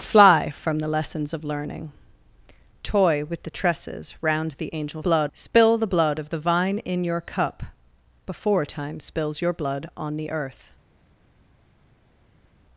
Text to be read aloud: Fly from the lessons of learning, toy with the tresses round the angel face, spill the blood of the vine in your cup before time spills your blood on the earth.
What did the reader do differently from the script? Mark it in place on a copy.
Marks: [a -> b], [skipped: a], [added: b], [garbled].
Fly from the lessons of learning, toy with the tresses round the angel [face, -> blood] spill the blood of the vine in your cup before time spills your blood on the earth.